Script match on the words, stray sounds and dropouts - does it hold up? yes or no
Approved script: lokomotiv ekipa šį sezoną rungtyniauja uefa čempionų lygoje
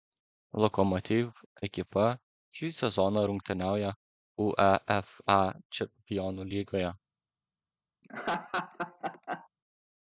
no